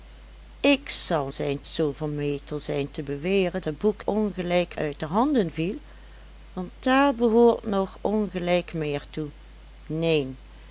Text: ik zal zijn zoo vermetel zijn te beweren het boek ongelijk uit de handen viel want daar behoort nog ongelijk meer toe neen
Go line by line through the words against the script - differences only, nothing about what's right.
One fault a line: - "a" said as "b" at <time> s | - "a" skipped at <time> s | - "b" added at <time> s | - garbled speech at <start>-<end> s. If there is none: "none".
none